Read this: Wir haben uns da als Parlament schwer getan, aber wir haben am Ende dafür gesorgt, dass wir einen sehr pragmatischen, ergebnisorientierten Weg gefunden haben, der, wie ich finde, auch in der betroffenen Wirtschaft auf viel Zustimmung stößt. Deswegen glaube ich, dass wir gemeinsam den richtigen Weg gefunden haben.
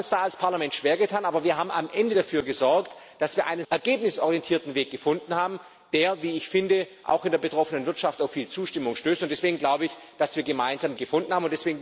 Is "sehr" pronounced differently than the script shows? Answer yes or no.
yes